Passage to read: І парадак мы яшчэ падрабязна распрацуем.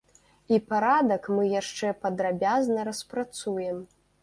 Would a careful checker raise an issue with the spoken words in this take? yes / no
no